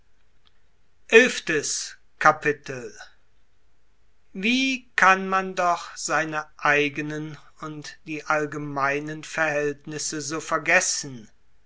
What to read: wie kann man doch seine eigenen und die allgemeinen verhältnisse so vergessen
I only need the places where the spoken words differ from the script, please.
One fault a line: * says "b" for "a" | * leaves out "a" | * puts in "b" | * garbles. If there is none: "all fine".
all fine